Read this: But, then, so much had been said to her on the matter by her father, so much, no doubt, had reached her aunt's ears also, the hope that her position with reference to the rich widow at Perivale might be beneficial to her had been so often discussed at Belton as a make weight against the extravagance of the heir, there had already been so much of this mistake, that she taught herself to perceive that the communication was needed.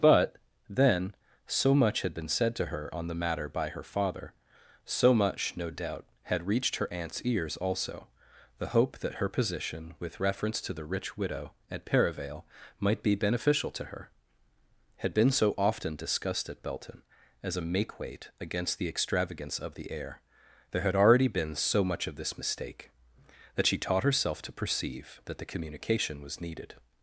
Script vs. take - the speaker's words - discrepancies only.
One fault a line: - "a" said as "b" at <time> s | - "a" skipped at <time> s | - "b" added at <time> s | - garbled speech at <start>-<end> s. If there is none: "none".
none